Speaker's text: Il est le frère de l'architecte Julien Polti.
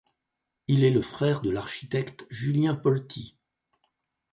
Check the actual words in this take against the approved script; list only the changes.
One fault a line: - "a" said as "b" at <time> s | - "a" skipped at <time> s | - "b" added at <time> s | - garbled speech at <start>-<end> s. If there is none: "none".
none